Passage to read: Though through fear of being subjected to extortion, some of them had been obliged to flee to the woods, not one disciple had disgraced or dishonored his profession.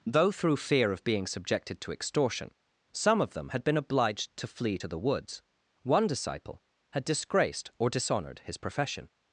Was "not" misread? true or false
true